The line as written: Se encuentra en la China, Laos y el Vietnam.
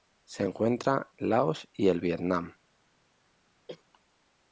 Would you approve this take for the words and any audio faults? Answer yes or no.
no